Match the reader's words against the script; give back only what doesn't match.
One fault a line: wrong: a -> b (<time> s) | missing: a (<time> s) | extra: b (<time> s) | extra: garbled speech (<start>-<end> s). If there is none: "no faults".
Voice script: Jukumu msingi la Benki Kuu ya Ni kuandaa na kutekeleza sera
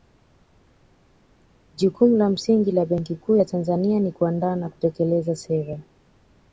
extra: la (2.2 s)
extra: Tanzania (3.4 s)